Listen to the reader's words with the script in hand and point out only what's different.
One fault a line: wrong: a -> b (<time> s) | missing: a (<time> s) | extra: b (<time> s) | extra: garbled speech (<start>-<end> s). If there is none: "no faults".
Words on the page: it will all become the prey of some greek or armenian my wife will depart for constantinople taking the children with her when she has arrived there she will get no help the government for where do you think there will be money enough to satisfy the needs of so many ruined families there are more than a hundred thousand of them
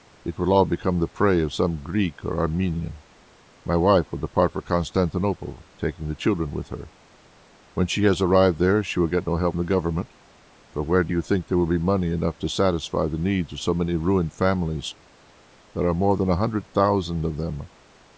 no faults